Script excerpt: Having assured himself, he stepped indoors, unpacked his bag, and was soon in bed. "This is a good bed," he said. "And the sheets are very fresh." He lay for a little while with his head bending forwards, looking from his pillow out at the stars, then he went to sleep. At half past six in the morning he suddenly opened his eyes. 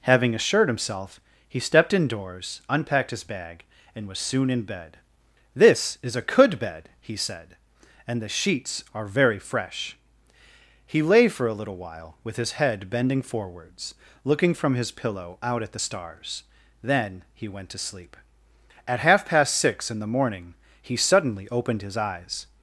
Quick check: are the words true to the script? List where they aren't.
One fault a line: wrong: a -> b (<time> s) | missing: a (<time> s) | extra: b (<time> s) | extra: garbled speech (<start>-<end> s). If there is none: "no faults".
wrong: good -> could (6.2 s)